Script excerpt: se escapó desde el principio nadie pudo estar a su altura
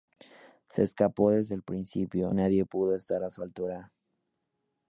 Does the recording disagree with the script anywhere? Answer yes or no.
no